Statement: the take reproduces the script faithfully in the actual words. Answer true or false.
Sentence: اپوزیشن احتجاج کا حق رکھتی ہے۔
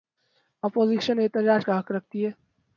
true